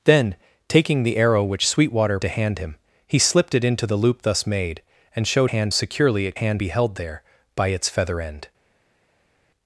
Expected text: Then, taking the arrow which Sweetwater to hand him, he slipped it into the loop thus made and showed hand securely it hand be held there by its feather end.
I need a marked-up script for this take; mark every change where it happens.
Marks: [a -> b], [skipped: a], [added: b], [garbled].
Then, taking the arrow which Sweetwater to hand him, he slipped it into the loop thus made and showed hand securely it hand be held there by its feather end.